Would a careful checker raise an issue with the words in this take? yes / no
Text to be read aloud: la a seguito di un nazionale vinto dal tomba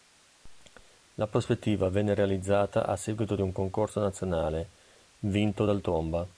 yes